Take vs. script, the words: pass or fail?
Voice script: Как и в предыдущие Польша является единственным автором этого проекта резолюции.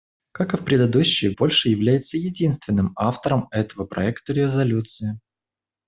pass